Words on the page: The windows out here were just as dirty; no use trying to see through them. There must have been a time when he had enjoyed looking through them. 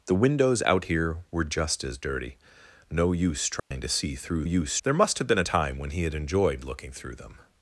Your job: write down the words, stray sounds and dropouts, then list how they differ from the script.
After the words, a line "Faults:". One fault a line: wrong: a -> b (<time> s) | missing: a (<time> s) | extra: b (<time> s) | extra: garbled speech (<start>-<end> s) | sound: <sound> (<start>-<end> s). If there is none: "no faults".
The windows out here were just as dirty; no use trying to see through use. There must have been a time when he had enjoyed looking through them.
Faults:
sound: dropout (3.6-3.7 s)
wrong: them -> use (4.4 s)